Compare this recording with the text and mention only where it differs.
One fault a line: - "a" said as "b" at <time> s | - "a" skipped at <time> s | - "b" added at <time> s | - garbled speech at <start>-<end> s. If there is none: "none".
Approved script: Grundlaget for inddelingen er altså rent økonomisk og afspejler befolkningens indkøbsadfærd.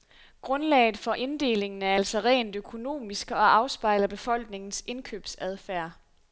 none